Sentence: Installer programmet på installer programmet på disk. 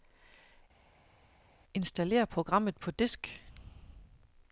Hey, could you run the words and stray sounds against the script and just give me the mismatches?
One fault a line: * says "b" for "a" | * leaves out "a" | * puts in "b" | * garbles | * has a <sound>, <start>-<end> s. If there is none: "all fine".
* leaves out "installer programmet på"